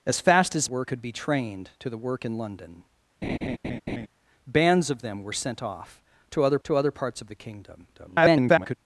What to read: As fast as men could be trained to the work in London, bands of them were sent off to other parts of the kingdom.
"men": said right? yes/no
no